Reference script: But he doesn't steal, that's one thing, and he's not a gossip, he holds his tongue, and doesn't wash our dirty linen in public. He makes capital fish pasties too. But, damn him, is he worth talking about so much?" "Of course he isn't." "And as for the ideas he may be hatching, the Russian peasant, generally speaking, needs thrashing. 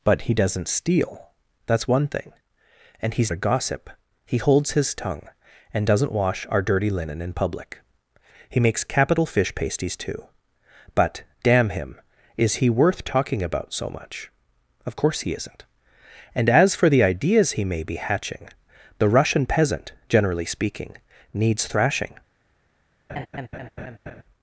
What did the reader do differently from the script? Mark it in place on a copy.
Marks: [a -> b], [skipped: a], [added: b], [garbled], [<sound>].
But he doesn't steal, that's one thing, and he's [skipped: not] a gossip, he holds his tongue, and doesn't wash our dirty linen in public. He makes capital fish pasties too. But, damn him, is he worth talking about so much?" "Of course he isn't." "And as for the ideas he may be hatching, the Russian peasant, generally speaking, needs thrashing. [laugh]